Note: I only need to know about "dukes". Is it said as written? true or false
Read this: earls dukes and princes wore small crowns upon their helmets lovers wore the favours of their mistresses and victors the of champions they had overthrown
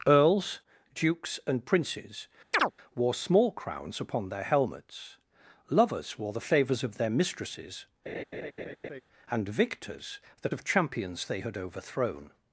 true